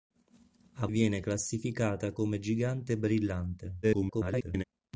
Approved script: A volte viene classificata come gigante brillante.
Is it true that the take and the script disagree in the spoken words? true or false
true